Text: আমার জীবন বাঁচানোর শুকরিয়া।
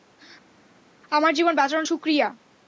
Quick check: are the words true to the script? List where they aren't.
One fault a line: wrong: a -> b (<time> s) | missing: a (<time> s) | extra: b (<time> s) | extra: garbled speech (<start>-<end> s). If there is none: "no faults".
no faults